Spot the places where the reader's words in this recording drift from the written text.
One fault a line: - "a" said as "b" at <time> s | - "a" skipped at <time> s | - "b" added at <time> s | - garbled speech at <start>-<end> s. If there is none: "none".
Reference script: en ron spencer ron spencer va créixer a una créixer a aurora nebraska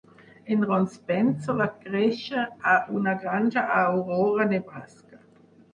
- "ron spencer" skipped at 1.6 s
- "créixer" said as "granja" at 3.2 s